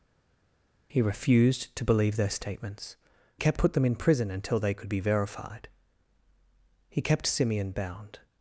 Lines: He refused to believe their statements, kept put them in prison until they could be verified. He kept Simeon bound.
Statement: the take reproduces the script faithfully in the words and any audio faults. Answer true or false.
true